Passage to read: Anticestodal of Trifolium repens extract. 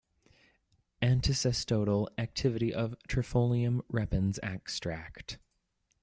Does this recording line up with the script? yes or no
no